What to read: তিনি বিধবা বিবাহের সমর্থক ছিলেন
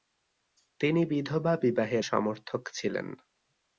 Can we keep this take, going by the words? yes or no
yes